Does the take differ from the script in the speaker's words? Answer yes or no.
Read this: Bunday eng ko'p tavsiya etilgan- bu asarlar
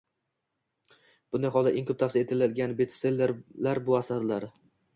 yes